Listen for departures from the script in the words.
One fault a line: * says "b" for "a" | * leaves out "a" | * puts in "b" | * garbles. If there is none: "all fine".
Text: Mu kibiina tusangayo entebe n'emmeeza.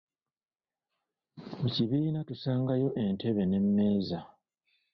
all fine